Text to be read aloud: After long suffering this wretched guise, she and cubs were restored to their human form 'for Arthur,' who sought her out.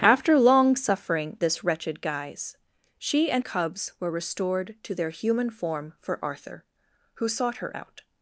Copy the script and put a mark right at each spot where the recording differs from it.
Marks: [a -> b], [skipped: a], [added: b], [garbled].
After long suffering this wretched guise, she and cubs were restored to their human form 'for Arthur,' who sought her out.